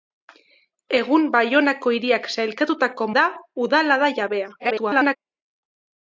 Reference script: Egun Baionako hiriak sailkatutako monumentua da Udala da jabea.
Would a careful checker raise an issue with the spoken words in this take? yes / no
yes